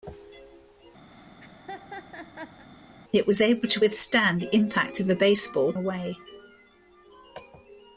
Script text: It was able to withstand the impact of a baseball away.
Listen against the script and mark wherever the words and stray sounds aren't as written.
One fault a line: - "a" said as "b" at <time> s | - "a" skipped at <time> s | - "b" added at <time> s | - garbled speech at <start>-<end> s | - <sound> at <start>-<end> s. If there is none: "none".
- laugh at 1.1-2.7 s